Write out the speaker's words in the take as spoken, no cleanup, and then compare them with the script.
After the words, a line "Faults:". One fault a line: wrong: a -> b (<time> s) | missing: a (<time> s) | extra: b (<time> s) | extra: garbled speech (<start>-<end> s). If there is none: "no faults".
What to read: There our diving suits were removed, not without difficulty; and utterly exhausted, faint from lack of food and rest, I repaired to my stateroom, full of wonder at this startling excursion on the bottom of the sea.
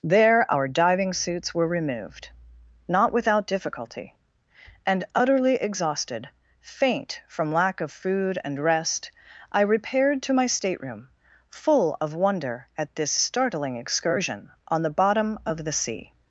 There our diving suits were removed, not without difficulty; and utterly exhausted, faint from lack of food and rest, I repaired to my stateroom, full of wonder at this startling excursion on the bottom of the sea.
Faults:
no faults